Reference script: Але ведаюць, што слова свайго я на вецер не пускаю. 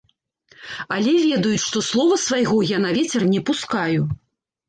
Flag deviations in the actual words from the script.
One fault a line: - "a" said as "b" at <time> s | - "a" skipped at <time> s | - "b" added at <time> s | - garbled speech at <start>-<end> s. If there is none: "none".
none